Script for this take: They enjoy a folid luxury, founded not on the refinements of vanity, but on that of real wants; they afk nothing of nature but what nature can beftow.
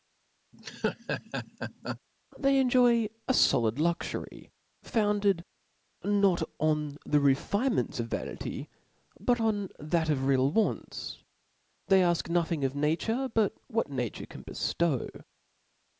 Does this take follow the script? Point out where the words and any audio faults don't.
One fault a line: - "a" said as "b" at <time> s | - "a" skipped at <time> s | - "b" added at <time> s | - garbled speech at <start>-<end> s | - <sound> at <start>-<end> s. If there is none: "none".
- laugh at 0.5-2.0 s